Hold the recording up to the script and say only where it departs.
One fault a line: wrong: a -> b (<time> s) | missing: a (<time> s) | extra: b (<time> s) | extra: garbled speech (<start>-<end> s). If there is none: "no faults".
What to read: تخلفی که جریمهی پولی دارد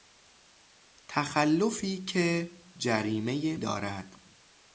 missing: پولی (3.6 s)